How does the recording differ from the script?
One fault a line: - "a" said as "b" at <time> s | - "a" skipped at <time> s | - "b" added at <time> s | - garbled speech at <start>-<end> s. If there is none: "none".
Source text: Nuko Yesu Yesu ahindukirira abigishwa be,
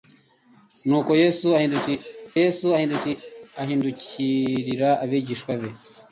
none